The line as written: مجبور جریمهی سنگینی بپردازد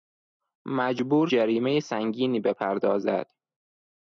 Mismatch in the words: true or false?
false